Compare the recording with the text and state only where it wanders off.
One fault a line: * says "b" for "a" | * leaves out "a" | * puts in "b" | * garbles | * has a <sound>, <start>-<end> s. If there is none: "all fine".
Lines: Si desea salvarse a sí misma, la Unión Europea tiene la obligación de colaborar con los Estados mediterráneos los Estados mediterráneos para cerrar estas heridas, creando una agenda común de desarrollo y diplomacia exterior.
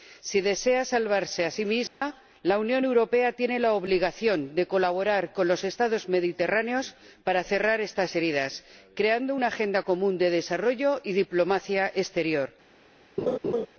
* has a dropout, 1.9-2.0 s
* leaves out "los Estados mediterráneos"
* has a laugh, 13.2-13.7 s